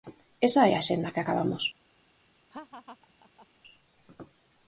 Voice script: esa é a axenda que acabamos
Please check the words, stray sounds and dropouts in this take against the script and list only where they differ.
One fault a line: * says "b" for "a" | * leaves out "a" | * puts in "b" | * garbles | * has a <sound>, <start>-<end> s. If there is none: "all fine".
* has a laugh, 2.5-3.5 s